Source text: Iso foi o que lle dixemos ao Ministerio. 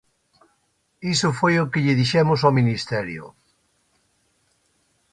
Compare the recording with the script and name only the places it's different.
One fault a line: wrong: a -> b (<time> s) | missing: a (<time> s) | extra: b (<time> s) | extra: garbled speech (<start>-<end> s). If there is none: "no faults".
no faults